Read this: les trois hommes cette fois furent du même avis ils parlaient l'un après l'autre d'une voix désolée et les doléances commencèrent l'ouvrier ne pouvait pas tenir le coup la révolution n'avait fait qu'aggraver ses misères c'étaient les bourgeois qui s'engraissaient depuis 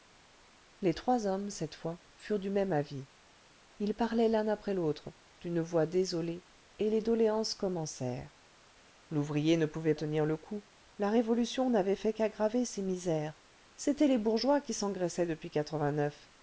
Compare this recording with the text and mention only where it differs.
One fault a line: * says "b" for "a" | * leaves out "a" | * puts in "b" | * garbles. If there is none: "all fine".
* leaves out "pas"